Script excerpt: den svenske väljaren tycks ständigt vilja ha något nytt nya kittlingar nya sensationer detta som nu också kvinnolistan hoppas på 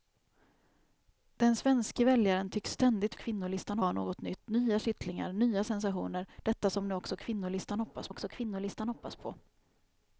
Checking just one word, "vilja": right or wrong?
wrong